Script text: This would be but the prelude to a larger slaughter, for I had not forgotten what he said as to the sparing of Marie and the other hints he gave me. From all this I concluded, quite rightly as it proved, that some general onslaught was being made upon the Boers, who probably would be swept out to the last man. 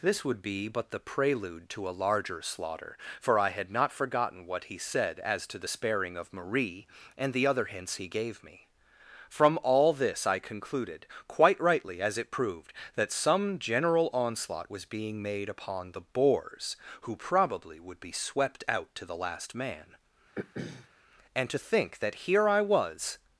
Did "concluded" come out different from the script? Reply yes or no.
no